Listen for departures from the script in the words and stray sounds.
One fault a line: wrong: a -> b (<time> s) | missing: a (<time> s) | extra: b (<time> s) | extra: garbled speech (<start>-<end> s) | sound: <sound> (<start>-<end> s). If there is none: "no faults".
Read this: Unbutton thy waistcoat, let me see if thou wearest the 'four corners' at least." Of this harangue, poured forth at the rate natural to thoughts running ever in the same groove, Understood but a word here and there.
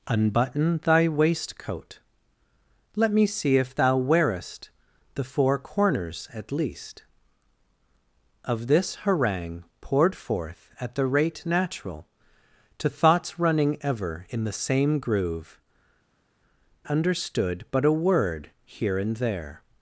no faults